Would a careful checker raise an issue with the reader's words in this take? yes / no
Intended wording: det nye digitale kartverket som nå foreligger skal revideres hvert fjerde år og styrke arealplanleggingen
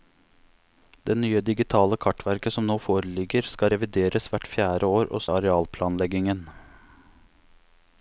yes